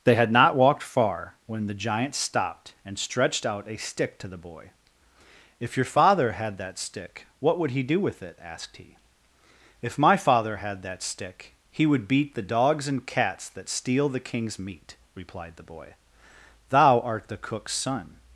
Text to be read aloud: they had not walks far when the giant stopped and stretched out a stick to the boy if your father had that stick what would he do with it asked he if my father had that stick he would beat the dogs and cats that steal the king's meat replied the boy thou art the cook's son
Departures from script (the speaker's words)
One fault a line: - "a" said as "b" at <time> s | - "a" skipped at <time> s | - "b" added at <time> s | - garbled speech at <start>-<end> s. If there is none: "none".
- "walks" said as "walked" at 0.6 s